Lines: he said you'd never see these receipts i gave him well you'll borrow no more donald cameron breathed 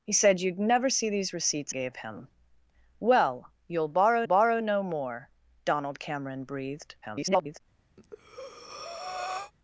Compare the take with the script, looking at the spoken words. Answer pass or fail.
fail